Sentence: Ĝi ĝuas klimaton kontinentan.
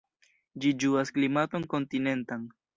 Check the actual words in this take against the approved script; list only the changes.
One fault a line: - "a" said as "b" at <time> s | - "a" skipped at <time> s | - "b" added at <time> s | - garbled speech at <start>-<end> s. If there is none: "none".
none